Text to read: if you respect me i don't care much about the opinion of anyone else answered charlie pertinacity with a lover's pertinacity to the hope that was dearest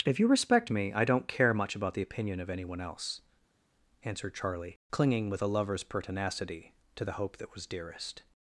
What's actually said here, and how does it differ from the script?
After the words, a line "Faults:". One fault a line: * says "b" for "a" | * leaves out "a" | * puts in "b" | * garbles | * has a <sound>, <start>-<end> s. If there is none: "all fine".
if you respect me i don't care much about the opinion of anyone else answered charlie clinging with a lover's pertinacity to the hope that was dearest
Faults:
* says "clinging" for "pertinacity"